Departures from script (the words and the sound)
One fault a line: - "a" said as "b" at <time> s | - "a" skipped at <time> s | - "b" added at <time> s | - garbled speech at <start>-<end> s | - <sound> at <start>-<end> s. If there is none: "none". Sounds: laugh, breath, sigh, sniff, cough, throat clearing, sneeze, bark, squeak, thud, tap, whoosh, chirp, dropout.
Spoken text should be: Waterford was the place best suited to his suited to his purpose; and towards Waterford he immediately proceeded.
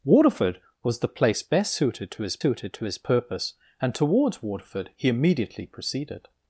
none